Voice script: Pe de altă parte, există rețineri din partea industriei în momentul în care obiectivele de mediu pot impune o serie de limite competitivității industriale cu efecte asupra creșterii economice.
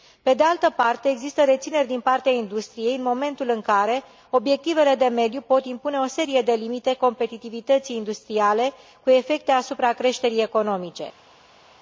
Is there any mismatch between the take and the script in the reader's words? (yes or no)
no